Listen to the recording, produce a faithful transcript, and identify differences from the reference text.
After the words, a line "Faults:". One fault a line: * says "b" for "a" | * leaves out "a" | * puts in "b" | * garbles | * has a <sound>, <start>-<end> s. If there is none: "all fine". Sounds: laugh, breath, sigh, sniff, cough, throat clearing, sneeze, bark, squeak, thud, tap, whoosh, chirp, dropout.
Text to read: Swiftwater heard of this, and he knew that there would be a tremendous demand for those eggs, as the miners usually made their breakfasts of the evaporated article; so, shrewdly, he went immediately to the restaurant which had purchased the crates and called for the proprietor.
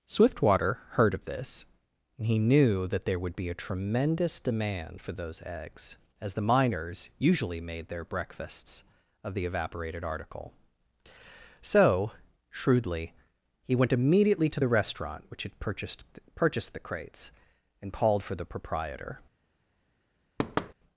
Swiftwater heard of this, and he knew that there would be a tremendous demand for those eggs, as the miners usually made their breakfasts of the evaporated article; so, shrewdly, he went immediately to the restaurant which had purchased purchased the crates and called for the proprietor.
Faults:
* puts in "purchased"
* has a thud, 20.4-20.7 s